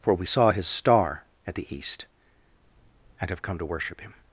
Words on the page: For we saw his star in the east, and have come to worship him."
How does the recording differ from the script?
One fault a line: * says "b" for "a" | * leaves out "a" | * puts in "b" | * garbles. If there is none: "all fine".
* says "at" for "in"